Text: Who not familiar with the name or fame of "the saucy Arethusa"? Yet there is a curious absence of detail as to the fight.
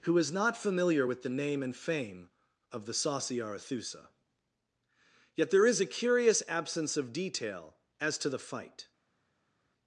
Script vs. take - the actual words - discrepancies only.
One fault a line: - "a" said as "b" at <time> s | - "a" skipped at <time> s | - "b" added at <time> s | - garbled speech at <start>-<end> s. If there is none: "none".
- "is" added at 0.2 s
- "or" said as "and" at 1.6 s